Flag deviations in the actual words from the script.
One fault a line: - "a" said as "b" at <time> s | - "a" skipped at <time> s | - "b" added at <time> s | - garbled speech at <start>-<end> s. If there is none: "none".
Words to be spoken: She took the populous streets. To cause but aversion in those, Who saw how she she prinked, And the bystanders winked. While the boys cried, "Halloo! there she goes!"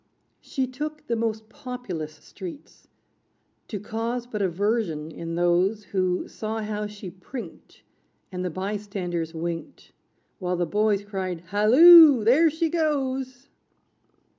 - "most" added at 1.1 s
- "she" skipped at 7.1 s